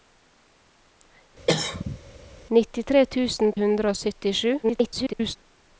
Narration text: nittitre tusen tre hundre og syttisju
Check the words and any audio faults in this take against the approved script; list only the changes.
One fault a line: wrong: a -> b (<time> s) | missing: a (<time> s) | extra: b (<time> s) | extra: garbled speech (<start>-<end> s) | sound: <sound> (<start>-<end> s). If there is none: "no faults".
sound: cough (1.5-2.0 s)
missing: tre (3.5 s)
extra: garbled speech (4.6-5.4 s)